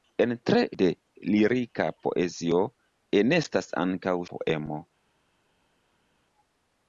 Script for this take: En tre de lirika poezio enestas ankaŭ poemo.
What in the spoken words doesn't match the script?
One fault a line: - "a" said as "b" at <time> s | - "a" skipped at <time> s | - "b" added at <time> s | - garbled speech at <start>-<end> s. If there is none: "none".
none